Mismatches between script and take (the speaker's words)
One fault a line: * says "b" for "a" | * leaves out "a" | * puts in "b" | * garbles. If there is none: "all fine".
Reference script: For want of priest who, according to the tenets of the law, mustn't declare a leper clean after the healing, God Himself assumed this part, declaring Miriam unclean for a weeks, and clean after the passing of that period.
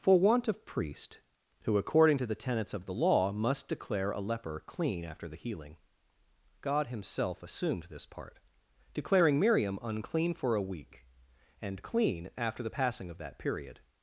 * says "must" for "mustn't"
* says "week" for "weeks"